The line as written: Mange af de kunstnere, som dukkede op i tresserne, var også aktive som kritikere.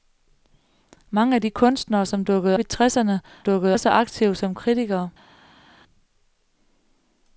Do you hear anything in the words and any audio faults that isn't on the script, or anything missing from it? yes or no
yes